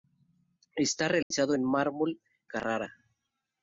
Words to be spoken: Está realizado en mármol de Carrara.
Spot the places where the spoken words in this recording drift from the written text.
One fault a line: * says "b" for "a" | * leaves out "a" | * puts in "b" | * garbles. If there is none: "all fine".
* leaves out "de"